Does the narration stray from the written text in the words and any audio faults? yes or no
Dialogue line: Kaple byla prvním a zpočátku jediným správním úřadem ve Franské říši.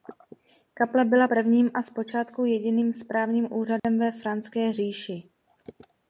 yes